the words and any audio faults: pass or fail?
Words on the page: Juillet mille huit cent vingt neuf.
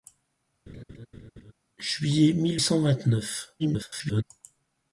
fail